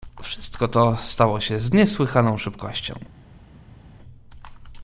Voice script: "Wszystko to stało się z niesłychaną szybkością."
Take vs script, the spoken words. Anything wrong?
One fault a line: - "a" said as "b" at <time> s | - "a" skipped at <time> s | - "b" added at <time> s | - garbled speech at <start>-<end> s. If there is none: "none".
none